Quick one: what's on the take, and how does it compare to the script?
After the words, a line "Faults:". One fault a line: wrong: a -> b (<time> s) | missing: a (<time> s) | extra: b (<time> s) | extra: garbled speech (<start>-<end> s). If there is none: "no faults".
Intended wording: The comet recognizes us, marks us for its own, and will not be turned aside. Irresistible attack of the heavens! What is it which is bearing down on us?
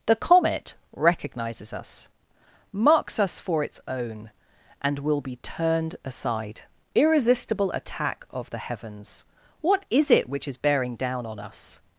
The comet recognizes us, marks us for its own, and will be turned aside. Irresistible attack of the heavens! What is it which is bearing down on us?
Faults:
missing: not (5.2 s)